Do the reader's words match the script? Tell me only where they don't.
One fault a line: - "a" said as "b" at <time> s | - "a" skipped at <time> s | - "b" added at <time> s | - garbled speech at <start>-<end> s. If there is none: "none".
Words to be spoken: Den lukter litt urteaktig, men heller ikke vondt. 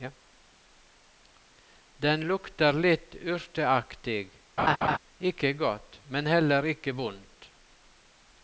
- "ikke godt" added at 5.2 s